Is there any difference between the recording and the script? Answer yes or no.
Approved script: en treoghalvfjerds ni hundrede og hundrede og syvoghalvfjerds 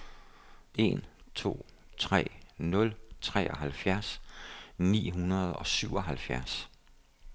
yes